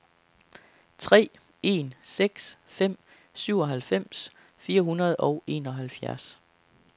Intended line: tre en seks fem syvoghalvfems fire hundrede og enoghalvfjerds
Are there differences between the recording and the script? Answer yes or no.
no